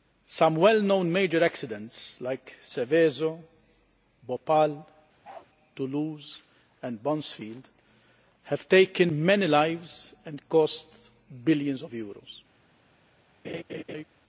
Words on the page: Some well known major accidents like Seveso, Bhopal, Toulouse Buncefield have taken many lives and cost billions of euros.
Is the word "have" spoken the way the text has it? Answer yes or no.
yes